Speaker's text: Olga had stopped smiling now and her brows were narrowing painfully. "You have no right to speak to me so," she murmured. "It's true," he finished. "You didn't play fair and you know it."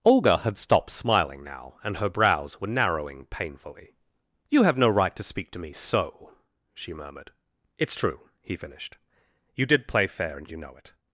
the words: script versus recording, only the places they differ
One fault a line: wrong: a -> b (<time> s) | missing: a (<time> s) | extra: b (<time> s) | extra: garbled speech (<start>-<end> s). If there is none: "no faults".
wrong: didn't -> did (9.7 s)